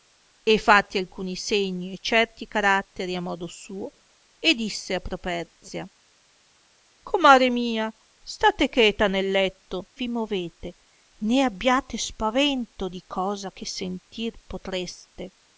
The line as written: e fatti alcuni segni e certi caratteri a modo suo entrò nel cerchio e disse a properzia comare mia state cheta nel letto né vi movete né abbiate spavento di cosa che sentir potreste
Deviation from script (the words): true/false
true